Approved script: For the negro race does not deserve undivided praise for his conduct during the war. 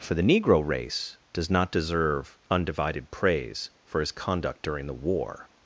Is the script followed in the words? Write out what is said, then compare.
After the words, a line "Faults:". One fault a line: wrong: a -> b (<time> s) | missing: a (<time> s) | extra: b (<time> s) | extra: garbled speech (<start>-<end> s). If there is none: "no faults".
For the negro race does not deserve undivided praise for his conduct during the war.
Faults:
no faults